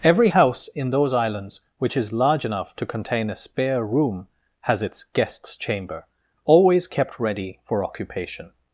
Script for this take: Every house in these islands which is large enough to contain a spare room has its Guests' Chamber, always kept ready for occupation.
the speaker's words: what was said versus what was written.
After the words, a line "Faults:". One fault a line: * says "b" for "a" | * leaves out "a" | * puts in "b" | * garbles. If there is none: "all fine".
Every house in those islands which is large enough to contain a spare room has its Guests' Chamber, always kept ready for occupation.
Faults:
* says "those" for "these"